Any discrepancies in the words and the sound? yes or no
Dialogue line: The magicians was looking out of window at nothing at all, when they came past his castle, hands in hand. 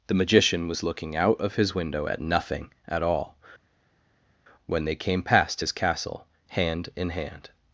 yes